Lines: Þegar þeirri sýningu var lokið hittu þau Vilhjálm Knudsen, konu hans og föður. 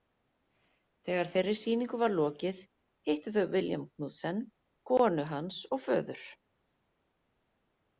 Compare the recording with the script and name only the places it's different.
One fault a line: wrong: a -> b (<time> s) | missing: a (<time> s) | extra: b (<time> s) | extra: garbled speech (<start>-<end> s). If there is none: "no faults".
no faults